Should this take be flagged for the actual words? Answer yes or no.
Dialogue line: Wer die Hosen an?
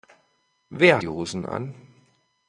no